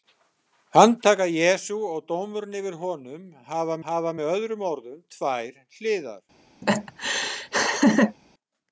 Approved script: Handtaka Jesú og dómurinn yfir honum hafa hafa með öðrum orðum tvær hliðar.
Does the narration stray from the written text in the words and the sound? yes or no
yes